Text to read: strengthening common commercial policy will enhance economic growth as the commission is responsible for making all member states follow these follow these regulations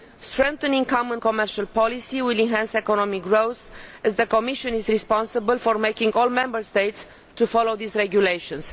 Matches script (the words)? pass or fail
fail